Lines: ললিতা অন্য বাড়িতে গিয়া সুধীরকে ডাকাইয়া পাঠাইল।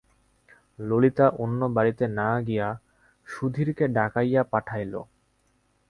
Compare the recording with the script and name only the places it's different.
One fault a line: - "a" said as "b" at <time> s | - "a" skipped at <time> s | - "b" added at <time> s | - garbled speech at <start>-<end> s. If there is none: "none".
- "না" added at 2.2 s